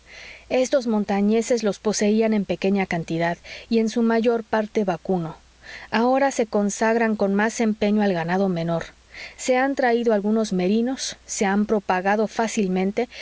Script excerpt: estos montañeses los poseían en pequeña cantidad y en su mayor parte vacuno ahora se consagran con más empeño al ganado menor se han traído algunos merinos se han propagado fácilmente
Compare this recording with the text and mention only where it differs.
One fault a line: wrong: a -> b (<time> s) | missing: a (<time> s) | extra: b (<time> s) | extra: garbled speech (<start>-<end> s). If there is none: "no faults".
no faults